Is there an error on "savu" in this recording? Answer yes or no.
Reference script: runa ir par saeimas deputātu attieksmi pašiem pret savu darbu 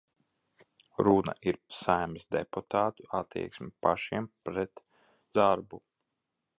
yes